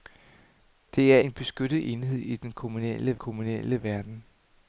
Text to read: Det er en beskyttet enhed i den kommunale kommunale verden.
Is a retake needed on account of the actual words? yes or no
no